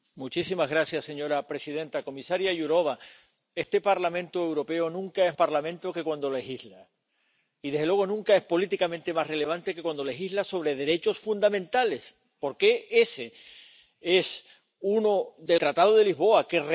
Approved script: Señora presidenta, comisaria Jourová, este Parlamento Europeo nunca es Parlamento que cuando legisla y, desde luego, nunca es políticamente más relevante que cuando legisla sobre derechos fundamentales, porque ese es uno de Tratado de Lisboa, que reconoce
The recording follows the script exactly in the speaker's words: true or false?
true